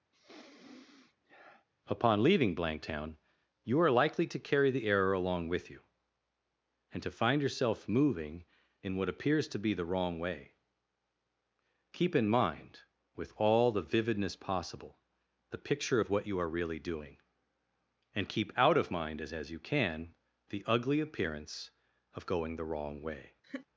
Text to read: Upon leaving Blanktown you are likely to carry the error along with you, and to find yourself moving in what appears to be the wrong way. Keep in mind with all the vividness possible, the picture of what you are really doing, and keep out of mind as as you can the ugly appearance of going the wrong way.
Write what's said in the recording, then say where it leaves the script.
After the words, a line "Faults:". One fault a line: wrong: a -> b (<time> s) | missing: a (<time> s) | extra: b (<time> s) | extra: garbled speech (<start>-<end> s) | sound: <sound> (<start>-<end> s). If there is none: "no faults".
Upon leaving Blanktown you are likely to carry the error along with you, and to find yourself moving in what appears to be the wrong way. Keep in mind with all the vividness possible, the picture of what you are really doing, and keep out of mind as as you can the ugly appearance of going the wrong way.
Faults:
sound: sniff (0.1-1.7 s)
sound: laugh (23.4-23.7 s)